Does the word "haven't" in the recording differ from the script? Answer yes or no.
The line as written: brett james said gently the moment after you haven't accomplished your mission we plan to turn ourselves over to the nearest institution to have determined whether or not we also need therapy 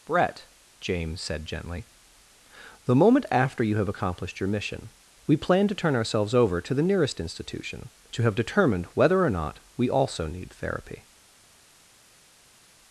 yes